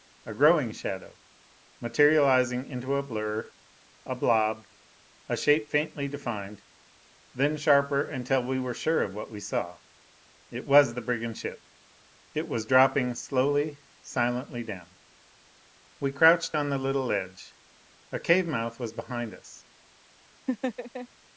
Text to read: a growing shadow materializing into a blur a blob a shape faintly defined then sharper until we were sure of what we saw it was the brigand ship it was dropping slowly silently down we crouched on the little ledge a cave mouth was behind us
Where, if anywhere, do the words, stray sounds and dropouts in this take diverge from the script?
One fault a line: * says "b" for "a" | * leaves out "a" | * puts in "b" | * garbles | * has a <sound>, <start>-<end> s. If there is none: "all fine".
* has a laugh, 20.5-21.1 s